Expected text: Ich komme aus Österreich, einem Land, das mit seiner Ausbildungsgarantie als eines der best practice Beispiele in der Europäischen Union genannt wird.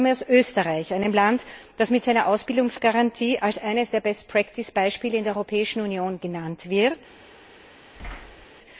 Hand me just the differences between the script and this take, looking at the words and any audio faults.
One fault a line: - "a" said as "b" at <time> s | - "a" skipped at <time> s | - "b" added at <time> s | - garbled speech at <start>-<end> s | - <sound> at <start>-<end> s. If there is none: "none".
- thud at 8.0-8.5 s